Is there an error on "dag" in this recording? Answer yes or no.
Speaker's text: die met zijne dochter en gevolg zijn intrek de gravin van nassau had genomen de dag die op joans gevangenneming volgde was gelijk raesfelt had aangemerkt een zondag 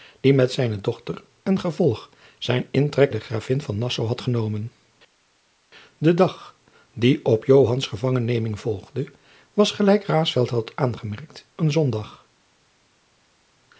no